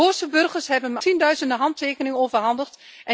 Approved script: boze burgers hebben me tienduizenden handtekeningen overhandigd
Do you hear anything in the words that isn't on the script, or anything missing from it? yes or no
no